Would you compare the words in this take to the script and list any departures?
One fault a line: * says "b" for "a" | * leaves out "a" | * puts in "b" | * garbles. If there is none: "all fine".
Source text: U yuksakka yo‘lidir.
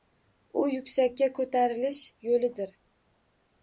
* puts in "ko‘tarilish"